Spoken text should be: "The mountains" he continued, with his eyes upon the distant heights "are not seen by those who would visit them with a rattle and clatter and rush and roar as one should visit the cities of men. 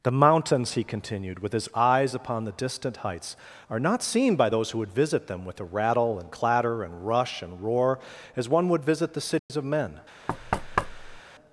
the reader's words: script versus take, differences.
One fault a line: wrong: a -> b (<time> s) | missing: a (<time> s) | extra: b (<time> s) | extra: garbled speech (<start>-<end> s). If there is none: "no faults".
wrong: should -> would (8.7 s)